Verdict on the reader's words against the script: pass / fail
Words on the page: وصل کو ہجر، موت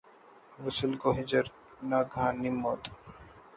fail